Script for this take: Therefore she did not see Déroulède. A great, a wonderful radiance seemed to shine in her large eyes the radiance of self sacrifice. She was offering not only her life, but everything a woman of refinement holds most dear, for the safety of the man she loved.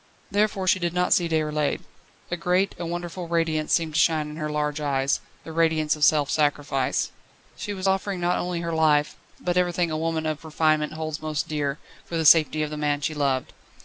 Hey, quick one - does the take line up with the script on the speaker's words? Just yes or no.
yes